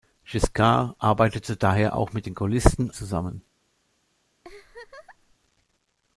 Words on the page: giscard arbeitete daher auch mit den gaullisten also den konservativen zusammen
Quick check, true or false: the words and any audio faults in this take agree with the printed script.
false